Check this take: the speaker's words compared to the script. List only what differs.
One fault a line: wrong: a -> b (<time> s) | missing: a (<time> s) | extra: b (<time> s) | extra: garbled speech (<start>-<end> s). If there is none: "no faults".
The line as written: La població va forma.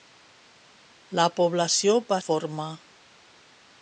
no faults